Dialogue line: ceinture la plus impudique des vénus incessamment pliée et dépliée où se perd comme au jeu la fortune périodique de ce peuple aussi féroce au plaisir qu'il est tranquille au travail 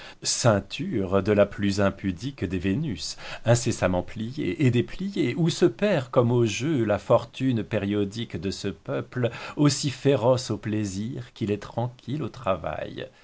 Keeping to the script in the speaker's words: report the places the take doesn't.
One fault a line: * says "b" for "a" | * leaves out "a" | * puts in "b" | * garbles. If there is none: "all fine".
* puts in "de"